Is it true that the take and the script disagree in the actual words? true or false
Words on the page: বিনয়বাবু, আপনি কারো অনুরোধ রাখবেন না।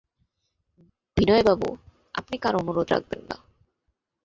false